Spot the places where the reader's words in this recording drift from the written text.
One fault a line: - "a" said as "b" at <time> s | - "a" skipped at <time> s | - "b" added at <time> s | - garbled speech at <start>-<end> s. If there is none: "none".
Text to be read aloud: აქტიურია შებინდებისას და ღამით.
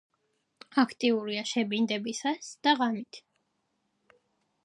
none